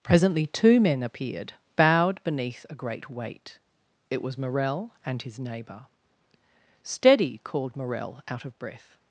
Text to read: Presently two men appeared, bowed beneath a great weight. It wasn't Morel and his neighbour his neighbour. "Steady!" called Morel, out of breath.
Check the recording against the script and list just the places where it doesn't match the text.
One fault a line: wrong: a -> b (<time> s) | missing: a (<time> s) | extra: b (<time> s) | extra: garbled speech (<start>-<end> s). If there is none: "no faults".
wrong: wasn't -> was (4.2 s)
missing: his neighbour (5.8 s)